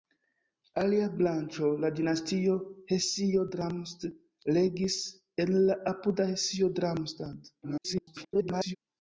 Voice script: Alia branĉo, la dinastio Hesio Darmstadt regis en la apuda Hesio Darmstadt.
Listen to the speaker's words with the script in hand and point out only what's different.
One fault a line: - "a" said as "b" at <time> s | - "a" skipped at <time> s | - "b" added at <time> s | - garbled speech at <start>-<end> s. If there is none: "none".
- garbled speech at 7.6-8.8 s